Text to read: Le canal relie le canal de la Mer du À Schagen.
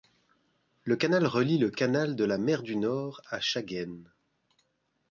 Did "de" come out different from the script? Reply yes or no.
no